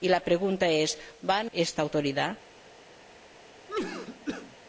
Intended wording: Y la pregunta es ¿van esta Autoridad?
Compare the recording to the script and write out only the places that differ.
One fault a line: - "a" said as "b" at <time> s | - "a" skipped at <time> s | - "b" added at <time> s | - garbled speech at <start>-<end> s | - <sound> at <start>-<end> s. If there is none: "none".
- cough at 3.7-4.6 s